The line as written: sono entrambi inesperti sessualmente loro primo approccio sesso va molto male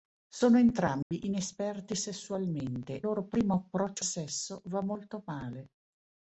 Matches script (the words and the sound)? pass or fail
fail